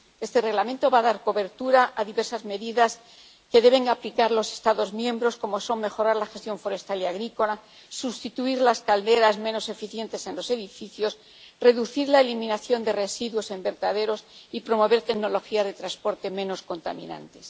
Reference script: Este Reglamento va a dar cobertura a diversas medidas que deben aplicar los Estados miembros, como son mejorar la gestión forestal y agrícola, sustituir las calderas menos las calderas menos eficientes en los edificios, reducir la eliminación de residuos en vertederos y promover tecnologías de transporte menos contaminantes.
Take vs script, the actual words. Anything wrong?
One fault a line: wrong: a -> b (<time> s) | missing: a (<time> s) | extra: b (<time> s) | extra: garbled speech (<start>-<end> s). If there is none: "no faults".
missing: las calderas menos (9.7 s)